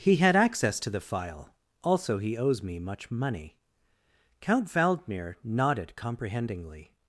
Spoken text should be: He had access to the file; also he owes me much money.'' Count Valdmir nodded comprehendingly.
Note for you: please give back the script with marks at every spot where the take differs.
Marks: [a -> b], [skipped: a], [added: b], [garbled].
He had access to the file; also he owes me much money.'' Count Valdmir nodded comprehendingly.